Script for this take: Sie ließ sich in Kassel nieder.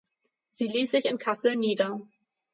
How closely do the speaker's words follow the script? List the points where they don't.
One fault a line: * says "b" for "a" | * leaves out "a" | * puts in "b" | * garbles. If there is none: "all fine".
all fine